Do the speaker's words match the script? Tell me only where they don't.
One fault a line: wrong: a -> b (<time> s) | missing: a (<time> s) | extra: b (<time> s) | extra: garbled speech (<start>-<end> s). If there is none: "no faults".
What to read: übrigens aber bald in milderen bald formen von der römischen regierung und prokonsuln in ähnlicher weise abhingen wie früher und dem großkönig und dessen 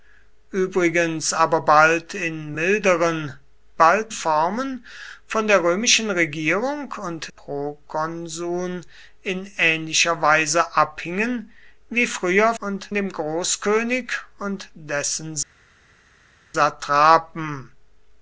no faults